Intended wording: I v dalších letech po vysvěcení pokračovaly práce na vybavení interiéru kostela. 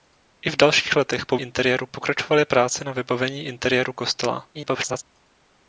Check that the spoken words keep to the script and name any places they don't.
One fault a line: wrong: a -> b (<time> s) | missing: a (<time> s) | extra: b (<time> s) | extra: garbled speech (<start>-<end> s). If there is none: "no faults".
wrong: vysvěcení -> interiéru (1.4 s)
extra: garbled speech (4.5-5.0 s)